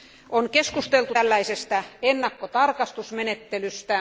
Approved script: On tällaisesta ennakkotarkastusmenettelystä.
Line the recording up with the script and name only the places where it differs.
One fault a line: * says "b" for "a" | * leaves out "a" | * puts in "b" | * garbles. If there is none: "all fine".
* puts in "keskusteltu"